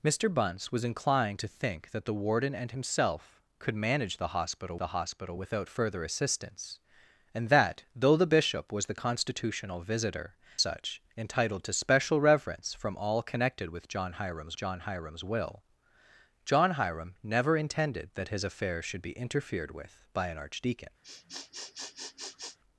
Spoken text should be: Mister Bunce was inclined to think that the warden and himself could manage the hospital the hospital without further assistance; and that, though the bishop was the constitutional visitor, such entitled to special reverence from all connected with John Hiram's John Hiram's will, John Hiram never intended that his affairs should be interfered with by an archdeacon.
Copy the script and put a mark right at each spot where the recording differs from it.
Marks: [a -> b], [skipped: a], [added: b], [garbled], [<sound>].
Mister Bunce was inclined to think that the warden and himself could manage the hospital the hospital without further assistance; and that, though the bishop was the constitutional visitor, such entitled to special reverence from all connected with John Hiram's John Hiram's will, John Hiram never intended that his affairs should be interfered with by an archdeacon. [sniff]